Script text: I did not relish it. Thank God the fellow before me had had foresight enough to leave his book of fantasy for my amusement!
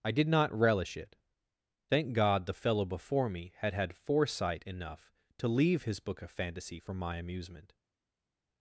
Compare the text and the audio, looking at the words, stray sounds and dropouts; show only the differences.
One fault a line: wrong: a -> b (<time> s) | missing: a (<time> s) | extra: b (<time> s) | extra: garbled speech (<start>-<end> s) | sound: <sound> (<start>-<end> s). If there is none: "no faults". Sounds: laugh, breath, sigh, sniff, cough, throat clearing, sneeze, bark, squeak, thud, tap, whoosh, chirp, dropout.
no faults